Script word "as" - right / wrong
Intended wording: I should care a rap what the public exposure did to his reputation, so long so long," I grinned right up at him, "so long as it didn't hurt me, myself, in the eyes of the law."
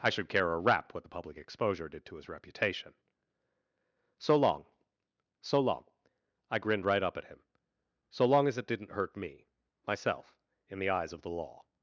right